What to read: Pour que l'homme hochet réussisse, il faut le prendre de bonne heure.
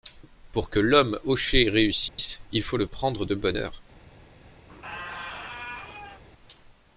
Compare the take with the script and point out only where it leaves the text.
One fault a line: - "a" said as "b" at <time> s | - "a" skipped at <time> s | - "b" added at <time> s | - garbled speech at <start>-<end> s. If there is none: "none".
none